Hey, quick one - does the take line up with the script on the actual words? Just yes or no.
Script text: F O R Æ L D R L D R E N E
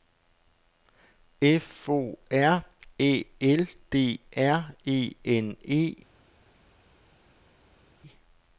no